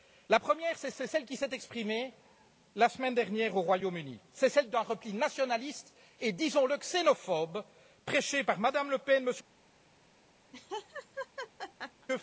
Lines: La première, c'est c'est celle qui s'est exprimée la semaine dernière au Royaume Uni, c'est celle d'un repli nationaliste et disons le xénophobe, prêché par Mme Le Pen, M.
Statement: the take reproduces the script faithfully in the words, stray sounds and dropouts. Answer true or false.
false